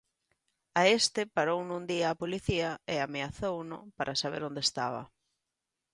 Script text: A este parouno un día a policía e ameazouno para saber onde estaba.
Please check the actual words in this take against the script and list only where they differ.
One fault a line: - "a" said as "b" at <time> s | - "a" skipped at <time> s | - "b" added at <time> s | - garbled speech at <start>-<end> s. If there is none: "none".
none